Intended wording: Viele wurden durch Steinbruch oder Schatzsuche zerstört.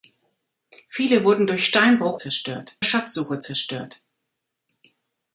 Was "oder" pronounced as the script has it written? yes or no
no